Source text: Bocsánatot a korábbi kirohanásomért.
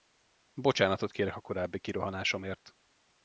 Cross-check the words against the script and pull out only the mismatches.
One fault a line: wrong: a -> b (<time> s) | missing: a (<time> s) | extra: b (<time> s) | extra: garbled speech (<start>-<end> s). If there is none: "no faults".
extra: kérek (1.1 s)